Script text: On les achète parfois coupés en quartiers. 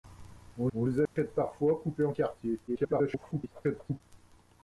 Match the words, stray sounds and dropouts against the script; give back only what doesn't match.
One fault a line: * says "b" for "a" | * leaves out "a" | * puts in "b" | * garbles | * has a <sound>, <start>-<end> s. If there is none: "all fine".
* puts in "on"
* has a dropout, 1.1-1.2 s
* garbles